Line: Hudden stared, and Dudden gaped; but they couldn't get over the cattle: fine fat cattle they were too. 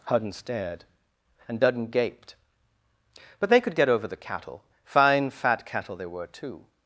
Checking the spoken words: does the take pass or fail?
fail